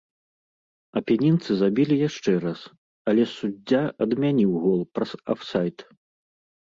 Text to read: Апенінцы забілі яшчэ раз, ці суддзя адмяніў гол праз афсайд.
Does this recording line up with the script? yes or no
no